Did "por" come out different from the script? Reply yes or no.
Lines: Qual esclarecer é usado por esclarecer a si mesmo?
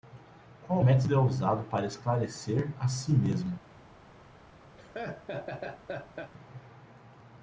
yes